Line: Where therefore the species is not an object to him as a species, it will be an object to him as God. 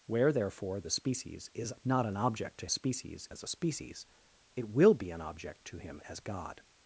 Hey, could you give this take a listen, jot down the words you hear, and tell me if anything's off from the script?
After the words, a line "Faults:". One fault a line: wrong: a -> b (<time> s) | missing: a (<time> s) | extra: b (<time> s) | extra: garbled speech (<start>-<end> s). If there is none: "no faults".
Where therefore the species is not an object to species as a species, it will be an object to him as God.
Faults:
wrong: him -> species (2.7 s)